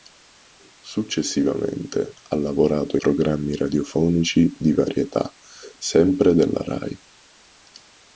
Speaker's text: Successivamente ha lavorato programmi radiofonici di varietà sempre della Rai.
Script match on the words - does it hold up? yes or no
yes